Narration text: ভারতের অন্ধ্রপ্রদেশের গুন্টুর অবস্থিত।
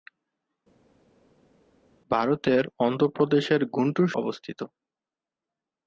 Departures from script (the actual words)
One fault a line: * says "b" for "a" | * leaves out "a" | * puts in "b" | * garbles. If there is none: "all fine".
all fine